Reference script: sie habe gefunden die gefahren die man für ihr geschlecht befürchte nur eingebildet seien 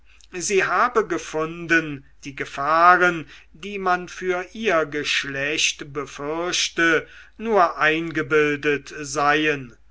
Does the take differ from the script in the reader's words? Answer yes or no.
no